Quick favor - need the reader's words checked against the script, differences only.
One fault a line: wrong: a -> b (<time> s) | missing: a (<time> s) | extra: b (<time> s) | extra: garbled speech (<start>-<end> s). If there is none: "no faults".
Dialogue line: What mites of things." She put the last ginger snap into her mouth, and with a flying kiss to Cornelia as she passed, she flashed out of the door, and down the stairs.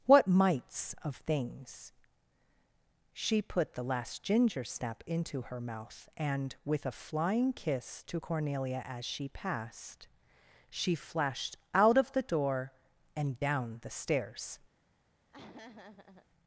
no faults